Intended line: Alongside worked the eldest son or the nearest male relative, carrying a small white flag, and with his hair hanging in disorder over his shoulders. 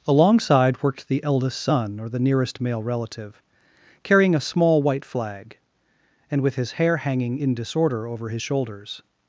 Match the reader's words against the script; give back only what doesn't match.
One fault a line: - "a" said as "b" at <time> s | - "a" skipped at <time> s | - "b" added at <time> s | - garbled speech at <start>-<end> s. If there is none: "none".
none